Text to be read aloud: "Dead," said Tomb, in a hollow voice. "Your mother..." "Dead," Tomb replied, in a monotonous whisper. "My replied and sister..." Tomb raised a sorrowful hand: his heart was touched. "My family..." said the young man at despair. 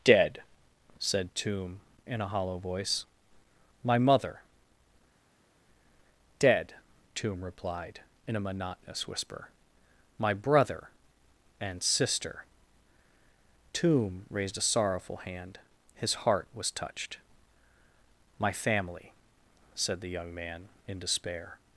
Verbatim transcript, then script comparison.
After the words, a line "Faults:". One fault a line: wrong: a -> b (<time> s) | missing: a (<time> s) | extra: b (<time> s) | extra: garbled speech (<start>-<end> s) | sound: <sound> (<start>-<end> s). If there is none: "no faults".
"Dead," said Tomb, in a hollow voice. "My mother..." "Dead," Tomb replied, in a monotonous whisper. "My brother and sister..." Tomb raised a sorrowful hand: his heart was touched. "My family..." said the young man in despair.
Faults:
wrong: Your -> My (3.8 s)
wrong: replied -> brother (10.3 s)
wrong: at -> in (20.9 s)